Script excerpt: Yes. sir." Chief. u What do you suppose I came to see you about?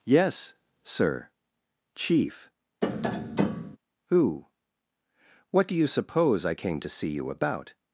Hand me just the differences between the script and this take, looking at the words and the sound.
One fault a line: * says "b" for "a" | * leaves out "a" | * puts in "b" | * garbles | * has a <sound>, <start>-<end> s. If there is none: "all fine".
* has a tap, 2.8-3.8 s
* says "who" for "u"